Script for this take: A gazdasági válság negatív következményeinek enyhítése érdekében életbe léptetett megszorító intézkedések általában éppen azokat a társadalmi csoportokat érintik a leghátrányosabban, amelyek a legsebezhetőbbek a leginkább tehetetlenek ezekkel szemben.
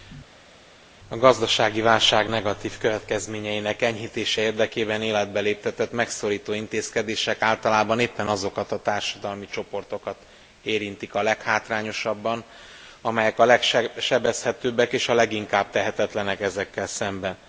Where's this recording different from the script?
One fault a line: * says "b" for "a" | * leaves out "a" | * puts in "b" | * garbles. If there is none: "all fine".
* puts in "és"